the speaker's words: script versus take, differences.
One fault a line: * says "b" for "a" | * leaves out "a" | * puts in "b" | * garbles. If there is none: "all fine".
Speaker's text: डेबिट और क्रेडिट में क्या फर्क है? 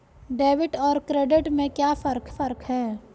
* puts in "फर्क"